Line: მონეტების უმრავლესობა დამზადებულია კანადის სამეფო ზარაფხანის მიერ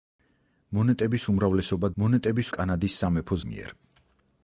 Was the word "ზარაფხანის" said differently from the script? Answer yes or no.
yes